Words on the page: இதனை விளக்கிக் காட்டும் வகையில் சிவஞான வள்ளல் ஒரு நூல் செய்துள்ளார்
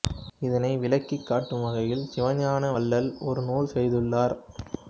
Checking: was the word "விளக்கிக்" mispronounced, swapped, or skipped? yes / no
no